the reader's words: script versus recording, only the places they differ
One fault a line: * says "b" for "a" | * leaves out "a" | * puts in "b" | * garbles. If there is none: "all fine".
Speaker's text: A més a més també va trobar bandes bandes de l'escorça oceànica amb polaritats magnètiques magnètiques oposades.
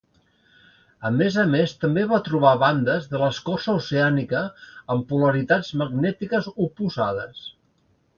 * leaves out "bandes"
* leaves out "magnètiques"